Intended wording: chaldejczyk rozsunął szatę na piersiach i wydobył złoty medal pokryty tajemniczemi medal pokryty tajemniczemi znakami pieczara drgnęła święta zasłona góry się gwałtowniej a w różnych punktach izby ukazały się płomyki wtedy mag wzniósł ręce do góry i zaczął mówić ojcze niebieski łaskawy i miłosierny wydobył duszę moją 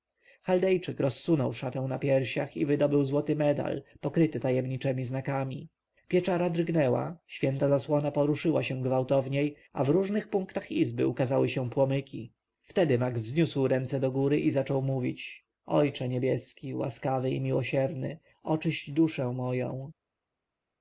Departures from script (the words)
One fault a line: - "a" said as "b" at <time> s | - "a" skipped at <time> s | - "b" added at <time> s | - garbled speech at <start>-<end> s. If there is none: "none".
- "medal pokryty tajemniczemi" skipped at 5.0 s
- "góry" said as "poruszyła" at 8.1 s
- "wydobył" said as "oczyść" at 18.4 s